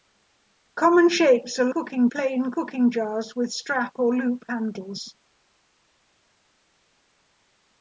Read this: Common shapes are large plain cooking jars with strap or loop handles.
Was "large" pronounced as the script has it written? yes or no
no